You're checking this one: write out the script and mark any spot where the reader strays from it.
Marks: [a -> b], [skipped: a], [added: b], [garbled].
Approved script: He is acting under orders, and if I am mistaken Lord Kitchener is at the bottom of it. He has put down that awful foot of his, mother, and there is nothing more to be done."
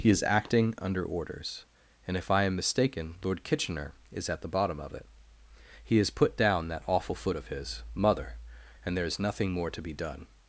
He is acting under orders, and if I am mistaken Lord Kitchener is at the bottom of it. He has put down that awful foot of his, mother, and there is nothing more to be done."